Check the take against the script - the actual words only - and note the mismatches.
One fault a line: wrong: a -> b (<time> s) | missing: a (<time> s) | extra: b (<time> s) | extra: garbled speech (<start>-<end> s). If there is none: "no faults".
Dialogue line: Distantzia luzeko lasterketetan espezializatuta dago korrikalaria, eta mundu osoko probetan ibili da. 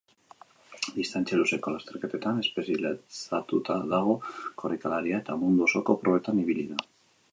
no faults